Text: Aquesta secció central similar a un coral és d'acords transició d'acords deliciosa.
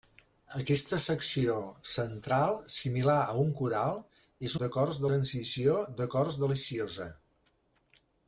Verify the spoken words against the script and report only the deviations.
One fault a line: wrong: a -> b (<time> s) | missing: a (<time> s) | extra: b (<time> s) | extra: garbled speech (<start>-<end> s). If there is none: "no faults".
no faults